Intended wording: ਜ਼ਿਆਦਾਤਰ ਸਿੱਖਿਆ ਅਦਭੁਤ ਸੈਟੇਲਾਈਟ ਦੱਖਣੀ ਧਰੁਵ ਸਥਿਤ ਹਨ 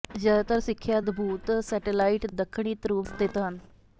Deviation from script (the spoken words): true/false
false